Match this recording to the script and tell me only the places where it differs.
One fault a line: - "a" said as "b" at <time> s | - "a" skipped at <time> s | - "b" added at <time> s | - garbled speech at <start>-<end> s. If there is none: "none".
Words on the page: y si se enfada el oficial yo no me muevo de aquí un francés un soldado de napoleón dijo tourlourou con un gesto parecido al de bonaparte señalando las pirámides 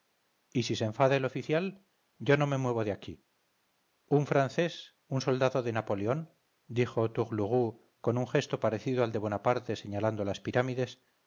none